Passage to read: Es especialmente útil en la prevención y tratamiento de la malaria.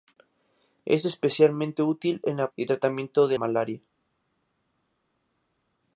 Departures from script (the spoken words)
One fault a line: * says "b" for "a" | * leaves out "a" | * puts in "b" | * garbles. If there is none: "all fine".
* leaves out "prevención"
* leaves out "la"